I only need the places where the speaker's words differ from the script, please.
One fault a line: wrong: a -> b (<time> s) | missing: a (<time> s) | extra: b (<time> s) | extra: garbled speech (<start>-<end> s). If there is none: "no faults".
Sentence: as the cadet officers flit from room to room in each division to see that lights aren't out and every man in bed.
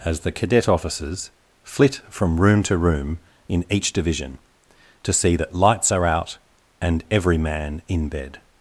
wrong: aren't -> are (5.9 s)